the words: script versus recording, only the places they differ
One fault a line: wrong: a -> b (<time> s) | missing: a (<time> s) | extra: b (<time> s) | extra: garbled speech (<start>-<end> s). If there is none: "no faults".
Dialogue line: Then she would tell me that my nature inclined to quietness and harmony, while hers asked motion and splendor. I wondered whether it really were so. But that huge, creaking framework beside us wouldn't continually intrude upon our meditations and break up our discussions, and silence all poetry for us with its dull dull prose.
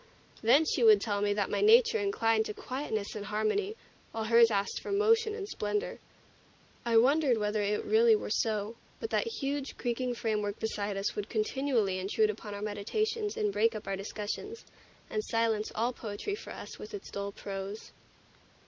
extra: for (4.8 s)
wrong: wouldn't -> would (11.2 s)
missing: dull (17.3 s)